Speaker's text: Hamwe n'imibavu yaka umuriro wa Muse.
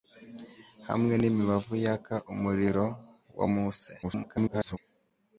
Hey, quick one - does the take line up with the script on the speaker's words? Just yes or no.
no